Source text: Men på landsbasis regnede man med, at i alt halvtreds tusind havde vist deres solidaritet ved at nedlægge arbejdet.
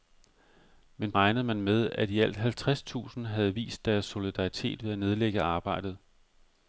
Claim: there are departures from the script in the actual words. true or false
true